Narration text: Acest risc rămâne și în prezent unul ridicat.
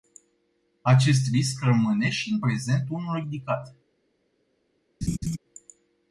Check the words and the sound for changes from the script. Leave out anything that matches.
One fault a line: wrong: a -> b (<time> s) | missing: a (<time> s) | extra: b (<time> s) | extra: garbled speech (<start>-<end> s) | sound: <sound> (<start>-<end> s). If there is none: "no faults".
sound: laugh (5.0-5.4 s)